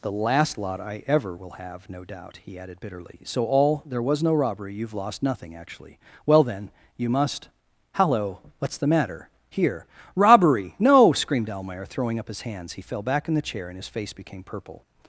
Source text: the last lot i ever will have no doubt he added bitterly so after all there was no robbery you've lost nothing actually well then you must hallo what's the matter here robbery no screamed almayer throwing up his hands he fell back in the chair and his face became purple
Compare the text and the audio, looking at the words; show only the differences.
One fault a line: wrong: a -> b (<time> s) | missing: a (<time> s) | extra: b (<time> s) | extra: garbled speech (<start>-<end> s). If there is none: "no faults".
missing: after (3.4 s)